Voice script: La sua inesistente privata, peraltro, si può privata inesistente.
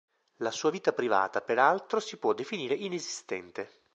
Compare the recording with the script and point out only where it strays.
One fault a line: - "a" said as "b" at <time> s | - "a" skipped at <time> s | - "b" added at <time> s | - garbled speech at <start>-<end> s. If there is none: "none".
- "inesistente" said as "vita" at 0.7 s
- "privata" said as "definire" at 2.3 s